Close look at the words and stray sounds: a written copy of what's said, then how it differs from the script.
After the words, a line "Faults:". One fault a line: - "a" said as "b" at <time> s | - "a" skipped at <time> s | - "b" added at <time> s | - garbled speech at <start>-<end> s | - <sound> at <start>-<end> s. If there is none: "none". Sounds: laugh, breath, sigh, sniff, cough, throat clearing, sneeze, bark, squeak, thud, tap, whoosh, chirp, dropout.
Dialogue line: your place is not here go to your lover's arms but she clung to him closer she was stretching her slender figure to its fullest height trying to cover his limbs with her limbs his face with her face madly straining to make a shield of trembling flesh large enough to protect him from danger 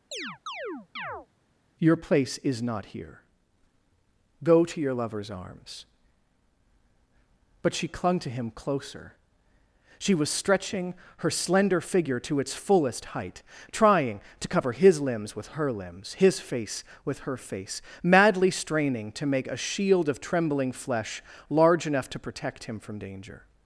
your place is not here go to your lover's arms but she clung to him closer she was stretching her slender figure to its fullest height trying to cover his limbs with her limbs his face with her face madly straining to make a shield of trembling flesh large enough to protect him from danger
Faults:
- chirp at 0.1-1.3 s